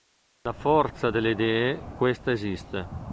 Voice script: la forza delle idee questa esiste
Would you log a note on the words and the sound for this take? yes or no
no